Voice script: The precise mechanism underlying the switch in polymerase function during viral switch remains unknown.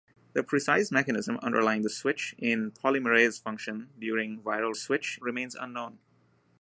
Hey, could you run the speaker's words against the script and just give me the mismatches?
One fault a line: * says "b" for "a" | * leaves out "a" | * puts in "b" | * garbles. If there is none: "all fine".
all fine